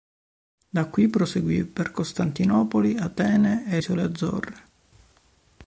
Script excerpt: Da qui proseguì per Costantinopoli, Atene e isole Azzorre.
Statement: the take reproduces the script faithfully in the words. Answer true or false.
true